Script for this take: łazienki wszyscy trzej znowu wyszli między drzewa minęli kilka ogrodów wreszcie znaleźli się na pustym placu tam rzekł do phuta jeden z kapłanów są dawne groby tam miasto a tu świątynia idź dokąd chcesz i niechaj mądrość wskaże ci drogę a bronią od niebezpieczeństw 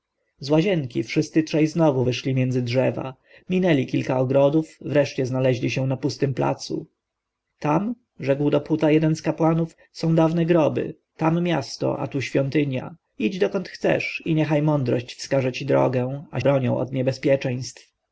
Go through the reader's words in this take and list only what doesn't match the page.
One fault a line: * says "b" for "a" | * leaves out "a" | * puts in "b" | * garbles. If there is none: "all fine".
all fine